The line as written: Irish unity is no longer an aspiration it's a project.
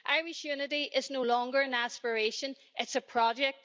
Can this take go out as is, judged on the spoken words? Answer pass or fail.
pass